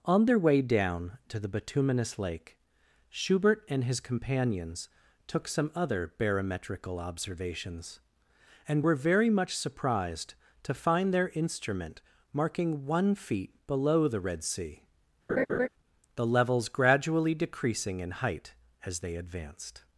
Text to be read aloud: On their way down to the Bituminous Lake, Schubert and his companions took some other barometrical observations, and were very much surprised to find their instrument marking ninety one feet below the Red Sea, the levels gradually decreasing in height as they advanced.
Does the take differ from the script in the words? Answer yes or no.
yes